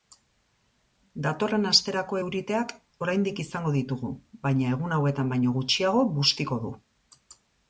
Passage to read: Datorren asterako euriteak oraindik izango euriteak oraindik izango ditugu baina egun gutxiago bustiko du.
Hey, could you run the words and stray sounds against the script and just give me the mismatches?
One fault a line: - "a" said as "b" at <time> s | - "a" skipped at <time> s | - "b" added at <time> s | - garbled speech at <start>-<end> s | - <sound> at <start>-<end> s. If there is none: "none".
- "euriteak oraindik izango" skipped at 3.7 s
- "hauetan baino" added at 5.0 s